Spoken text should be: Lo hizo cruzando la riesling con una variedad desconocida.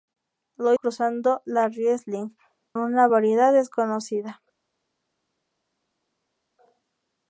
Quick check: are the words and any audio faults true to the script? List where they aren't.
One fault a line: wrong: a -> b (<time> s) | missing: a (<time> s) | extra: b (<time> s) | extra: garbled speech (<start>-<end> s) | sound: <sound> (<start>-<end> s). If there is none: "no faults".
missing: hizo (0.7 s)
missing: con (2.3 s)